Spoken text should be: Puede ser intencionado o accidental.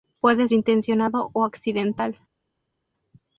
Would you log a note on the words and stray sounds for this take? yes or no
yes